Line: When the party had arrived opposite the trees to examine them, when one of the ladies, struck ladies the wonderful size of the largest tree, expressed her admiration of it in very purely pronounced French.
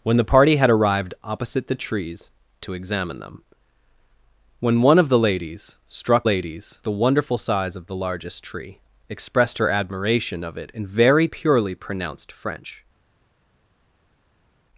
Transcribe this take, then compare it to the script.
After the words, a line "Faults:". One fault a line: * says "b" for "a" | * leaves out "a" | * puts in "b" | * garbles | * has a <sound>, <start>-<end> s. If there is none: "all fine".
When the party had arrived opposite the trees to examine them, when one of the ladies, struck ladies the wonderful size of the largest tree, expressed her admiration of it in very purely pronounced French.
Faults:
all fine